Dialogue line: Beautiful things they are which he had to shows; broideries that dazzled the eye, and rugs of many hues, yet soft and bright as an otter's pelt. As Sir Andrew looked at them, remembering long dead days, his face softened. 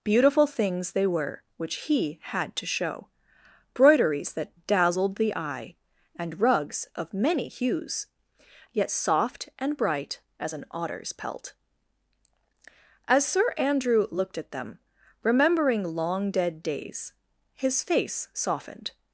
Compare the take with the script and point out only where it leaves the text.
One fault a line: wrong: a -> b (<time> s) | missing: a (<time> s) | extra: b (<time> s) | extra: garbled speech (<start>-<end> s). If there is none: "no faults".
wrong: are -> were (1.1 s)
wrong: shows -> show (2.6 s)